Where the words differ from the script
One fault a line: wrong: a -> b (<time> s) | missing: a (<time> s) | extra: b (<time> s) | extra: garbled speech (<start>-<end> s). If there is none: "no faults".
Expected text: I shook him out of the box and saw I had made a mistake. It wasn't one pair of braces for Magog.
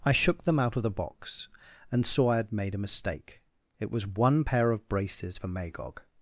wrong: him -> them (0.5 s)
wrong: wasn't -> was (3.9 s)